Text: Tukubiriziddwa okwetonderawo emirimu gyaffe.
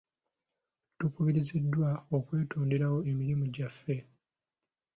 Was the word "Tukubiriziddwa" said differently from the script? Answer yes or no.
no